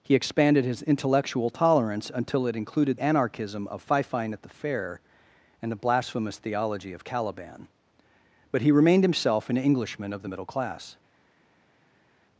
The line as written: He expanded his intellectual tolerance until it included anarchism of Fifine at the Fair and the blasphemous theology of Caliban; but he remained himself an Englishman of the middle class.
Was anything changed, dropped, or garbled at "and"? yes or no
no